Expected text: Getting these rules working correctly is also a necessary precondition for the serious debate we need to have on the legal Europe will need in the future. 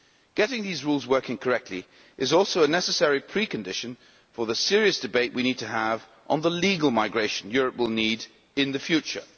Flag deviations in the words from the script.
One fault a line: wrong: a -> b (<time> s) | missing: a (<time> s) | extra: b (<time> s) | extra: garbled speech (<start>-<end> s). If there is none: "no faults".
extra: migration (6.9 s)